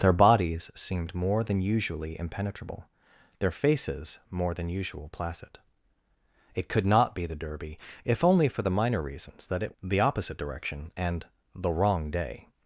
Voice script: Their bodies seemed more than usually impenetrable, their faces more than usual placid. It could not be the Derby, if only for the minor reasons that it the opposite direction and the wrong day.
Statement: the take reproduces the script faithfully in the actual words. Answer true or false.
true